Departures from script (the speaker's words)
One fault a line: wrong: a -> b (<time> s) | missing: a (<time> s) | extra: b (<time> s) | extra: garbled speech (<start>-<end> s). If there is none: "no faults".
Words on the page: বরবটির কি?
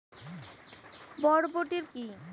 no faults